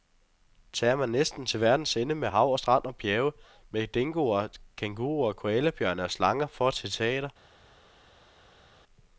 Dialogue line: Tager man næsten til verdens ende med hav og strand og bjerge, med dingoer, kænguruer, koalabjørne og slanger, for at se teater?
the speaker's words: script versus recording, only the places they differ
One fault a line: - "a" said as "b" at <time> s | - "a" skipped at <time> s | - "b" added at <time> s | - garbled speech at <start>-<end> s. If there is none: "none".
none